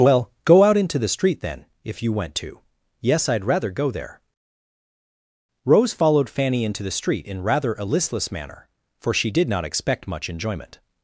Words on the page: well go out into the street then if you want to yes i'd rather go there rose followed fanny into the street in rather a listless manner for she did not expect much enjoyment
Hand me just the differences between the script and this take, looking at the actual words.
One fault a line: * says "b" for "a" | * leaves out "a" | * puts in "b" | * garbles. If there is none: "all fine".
* says "went" for "want"